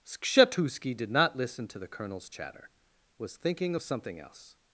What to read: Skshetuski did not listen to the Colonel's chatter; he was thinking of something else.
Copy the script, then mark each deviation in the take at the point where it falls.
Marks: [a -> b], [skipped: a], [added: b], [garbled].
Skshetuski did not listen to the Colonel's chatter; [skipped: he] was thinking of something else.